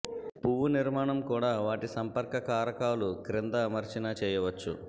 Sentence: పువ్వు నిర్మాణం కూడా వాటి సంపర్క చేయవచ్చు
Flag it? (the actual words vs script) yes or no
yes